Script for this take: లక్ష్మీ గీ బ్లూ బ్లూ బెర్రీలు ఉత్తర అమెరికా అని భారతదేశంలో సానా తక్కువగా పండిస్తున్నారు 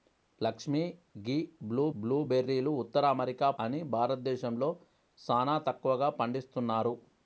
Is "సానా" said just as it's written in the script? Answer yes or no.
yes